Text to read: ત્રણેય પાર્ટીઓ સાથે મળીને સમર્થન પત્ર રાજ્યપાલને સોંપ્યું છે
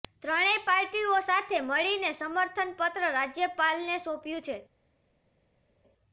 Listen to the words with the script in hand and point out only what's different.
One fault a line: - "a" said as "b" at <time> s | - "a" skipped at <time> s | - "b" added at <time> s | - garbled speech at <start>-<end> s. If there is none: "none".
none